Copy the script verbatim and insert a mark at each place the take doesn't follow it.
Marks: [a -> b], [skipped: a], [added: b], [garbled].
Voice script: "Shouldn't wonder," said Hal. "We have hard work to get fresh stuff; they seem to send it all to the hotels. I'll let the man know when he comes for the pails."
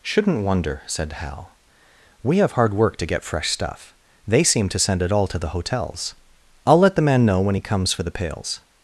"Shouldn't wonder," said Hal. "We have hard work to get fresh stuff; they seem to send it all to the hotels. I'll let the man know when he comes for the pails."